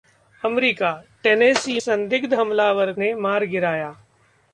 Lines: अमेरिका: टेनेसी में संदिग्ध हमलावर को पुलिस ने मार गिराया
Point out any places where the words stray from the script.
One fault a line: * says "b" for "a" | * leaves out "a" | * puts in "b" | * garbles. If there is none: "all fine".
* leaves out "में"
* leaves out "को पुलिस"